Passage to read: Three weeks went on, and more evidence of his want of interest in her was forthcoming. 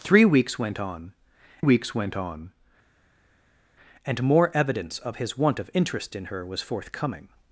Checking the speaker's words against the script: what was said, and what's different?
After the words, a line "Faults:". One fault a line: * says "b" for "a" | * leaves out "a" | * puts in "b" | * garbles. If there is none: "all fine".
Three weeks went on weeks went on, and more evidence of his want of interest in her was forthcoming.
Faults:
* puts in "weeks went on"